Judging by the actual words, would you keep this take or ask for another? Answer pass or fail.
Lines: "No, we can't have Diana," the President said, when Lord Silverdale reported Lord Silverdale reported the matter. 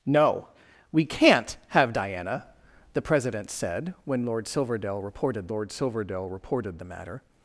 pass